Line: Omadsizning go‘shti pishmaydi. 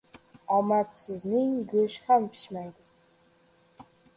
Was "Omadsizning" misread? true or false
false